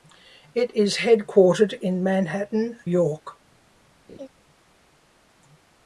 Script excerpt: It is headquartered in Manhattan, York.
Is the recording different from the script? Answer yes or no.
no